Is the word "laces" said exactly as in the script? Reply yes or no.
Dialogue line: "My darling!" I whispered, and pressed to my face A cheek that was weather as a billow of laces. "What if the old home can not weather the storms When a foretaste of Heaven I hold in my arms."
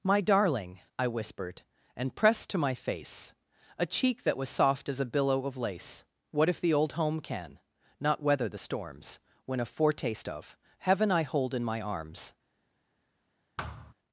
no